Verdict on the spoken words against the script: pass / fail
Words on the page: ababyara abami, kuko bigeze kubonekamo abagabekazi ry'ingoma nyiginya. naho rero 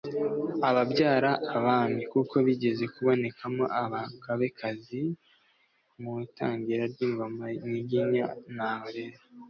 fail